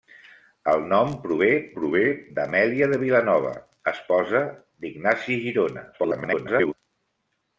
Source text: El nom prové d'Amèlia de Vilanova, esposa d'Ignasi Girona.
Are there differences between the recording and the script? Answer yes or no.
yes